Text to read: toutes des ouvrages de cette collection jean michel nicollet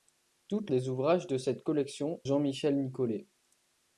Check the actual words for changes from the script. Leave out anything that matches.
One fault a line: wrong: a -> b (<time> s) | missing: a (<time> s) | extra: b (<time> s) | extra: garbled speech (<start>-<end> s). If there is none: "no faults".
no faults